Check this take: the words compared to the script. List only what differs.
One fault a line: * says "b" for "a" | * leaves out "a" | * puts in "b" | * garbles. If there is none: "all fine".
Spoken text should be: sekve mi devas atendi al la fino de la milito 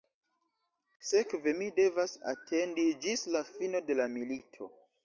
* says "ĝis" for "al"